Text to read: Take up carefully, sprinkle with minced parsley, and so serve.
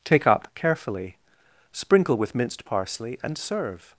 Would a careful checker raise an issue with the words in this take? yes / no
yes